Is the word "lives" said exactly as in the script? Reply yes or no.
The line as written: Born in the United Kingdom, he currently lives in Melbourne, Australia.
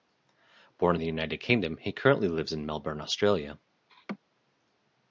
yes